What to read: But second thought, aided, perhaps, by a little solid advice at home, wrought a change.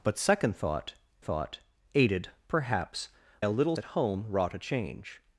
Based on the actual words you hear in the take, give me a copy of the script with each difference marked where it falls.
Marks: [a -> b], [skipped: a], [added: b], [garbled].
But second thought, [added: thought] aided, perhaps, [skipped: by] a little [skipped: solid advice] at home, wrought a change.